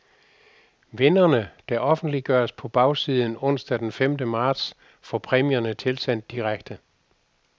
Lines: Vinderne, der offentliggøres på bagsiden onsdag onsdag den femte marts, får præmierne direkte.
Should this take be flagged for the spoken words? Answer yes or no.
yes